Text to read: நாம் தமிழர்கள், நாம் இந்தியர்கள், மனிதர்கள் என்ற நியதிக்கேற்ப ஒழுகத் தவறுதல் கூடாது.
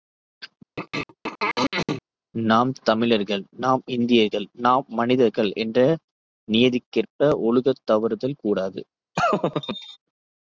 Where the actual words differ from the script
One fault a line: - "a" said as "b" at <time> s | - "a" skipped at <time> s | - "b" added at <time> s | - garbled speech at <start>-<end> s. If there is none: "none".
- "நாம்" added at 4.6 s